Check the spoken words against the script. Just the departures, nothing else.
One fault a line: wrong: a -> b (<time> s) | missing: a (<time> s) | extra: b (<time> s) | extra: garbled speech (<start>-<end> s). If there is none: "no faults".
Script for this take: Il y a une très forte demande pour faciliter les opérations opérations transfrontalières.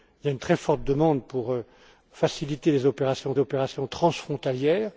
no faults